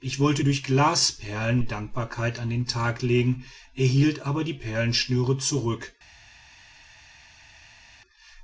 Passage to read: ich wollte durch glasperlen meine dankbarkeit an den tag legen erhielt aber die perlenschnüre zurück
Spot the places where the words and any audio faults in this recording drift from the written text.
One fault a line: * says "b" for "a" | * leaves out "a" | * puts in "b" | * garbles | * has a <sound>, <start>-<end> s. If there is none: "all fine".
* leaves out "meine"